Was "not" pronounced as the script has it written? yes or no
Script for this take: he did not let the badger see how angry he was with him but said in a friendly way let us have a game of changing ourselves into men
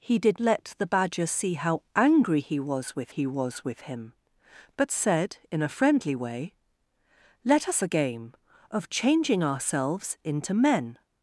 no